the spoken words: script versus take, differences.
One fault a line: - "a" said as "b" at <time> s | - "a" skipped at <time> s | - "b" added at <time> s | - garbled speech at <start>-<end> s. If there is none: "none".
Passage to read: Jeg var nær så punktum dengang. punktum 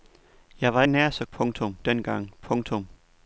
none